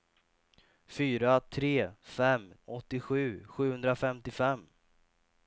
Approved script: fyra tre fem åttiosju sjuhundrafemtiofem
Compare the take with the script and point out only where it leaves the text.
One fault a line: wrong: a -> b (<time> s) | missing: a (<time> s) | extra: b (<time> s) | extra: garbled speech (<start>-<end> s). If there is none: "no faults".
no faults